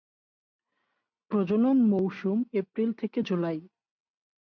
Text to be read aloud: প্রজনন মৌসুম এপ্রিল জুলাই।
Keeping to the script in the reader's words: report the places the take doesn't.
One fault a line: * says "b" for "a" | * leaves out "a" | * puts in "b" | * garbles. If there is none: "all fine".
* puts in "থেকে"